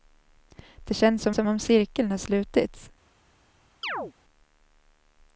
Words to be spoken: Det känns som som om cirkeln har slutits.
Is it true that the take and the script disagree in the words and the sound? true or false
true